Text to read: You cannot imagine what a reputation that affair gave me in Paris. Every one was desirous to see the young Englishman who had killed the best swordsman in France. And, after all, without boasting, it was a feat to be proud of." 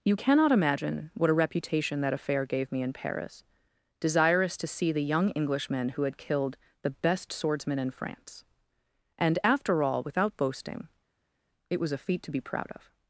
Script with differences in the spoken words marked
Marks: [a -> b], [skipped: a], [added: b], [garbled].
You cannot imagine what a reputation that affair gave me in Paris. [skipped: Every one was] desirous to see the young Englishman who had killed the best swordsman in France. And, after all, without boasting, it was a feat to be proud of."